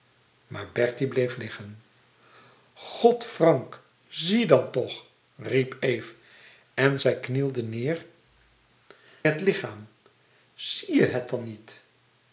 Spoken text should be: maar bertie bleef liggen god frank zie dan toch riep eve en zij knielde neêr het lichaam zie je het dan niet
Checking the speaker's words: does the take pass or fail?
pass